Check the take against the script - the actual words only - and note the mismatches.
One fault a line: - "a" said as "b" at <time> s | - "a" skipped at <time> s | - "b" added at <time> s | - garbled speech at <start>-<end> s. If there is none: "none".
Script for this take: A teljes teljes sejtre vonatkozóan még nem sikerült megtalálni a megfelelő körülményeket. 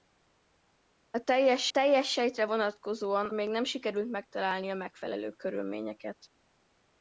none